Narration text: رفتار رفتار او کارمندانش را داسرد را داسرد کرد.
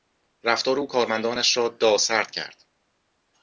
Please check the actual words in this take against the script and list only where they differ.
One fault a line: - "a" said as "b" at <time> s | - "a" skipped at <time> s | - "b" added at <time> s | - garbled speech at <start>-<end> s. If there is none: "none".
- "رفتار" skipped at 0.8 s
- "را داسرد" skipped at 2.3 s